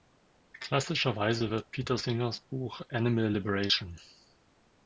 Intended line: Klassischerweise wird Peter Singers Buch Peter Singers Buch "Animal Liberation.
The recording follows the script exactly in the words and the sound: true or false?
false